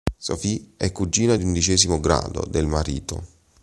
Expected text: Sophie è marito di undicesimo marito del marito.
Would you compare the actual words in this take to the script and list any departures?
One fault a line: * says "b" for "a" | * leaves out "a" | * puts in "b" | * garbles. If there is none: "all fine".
* says "cugina" for "marito"
* says "grado" for "marito"